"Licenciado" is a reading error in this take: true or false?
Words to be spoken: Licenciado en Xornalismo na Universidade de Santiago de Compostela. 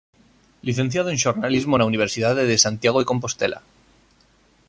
false